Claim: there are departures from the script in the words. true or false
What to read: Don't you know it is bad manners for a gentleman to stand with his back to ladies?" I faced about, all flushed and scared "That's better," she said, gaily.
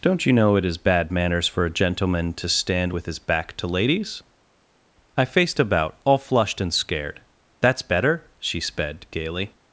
true